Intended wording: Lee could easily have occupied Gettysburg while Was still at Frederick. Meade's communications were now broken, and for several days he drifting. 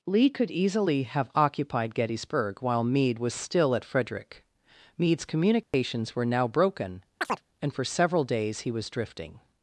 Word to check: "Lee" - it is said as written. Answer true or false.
true